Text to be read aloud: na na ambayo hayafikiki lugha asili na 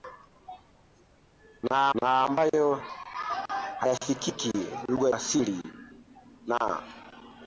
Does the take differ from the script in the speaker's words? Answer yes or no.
no